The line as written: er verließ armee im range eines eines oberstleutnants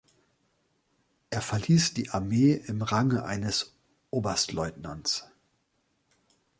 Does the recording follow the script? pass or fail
fail